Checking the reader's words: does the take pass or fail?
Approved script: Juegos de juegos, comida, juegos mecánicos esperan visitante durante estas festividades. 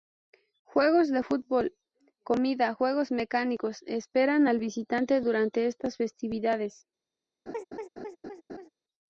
fail